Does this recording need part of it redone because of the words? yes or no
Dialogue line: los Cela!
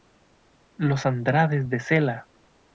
yes